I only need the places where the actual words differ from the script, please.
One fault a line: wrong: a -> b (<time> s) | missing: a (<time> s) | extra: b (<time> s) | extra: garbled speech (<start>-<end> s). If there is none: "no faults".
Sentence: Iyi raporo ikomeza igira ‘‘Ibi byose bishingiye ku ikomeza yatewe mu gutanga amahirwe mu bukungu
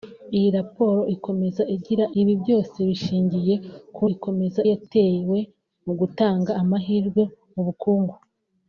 no faults